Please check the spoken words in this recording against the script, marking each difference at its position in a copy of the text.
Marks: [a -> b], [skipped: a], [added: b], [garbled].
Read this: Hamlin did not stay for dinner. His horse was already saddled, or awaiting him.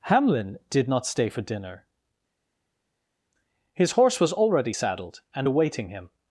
Hamlin did not stay for dinner. His horse was already saddled, [or -> and] awaiting him.